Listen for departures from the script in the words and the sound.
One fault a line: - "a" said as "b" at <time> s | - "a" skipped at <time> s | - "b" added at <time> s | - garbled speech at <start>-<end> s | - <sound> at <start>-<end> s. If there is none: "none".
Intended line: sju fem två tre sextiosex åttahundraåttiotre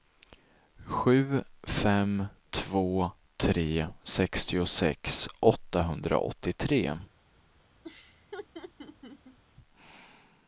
- laugh at 7.8-9.4 s